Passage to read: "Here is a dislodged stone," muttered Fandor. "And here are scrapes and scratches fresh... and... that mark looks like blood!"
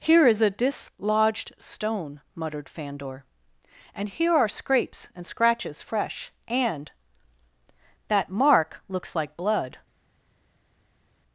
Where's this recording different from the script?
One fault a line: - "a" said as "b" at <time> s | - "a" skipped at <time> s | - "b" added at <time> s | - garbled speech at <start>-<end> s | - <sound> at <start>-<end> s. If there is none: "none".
none